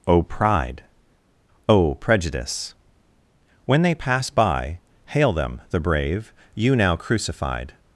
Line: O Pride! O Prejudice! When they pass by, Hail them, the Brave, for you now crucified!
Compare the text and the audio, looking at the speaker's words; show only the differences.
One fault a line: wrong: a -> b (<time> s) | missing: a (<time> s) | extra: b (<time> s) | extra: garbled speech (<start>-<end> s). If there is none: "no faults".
missing: for (6.3 s)